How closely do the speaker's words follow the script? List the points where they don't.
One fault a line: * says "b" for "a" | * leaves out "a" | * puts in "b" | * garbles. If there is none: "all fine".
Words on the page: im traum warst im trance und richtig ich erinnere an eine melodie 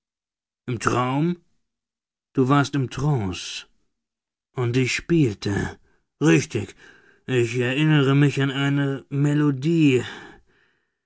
* puts in "du"
* puts in "ich spielte"
* puts in "mich"